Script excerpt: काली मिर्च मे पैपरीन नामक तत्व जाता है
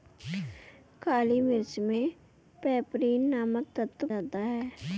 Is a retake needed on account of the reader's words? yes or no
no